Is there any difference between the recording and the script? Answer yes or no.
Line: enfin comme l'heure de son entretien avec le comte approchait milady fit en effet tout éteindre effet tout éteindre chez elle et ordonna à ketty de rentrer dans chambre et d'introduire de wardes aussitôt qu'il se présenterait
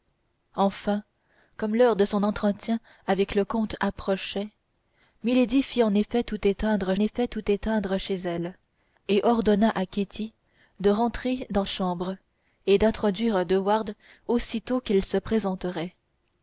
no